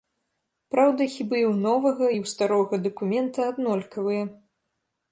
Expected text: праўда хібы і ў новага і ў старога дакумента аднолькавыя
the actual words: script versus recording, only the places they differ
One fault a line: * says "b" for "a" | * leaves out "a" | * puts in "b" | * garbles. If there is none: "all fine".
all fine